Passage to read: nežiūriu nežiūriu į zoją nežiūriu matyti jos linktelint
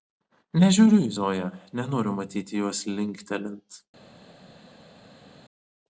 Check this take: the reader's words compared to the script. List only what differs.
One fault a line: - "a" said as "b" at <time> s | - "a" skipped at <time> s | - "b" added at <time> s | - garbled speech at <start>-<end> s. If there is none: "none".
- "nežiūriu" skipped at 1.0 s
- "nežiūriu" said as "nenoriu" at 1.8 s